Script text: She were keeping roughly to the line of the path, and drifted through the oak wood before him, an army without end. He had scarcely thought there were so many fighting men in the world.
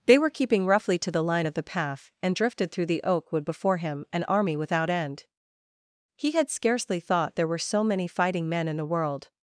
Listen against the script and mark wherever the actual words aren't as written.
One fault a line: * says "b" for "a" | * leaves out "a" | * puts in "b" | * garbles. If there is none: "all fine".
* says "They" for "She"